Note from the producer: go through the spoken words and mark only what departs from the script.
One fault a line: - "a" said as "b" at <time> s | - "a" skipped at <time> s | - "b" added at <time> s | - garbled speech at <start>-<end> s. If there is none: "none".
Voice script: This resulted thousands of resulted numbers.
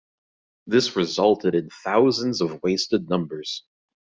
- "in" added at 1.5 s
- "resulted" said as "wasted" at 2.6 s